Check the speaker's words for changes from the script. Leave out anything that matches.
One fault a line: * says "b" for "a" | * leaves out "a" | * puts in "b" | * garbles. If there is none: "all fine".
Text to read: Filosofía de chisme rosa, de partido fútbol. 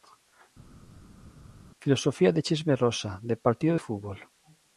all fine